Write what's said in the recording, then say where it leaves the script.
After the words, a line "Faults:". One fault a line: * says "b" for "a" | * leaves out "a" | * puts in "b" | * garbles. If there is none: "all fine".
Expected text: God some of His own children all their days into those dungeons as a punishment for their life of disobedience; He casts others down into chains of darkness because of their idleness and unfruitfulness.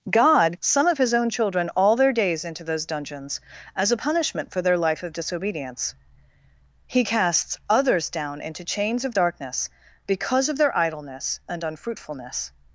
God some of His own children all their days into those dungeons as a punishment for their life of disobedience; He casts others down into chains of darkness because of their idleness and unfruitfulness.
Faults:
all fine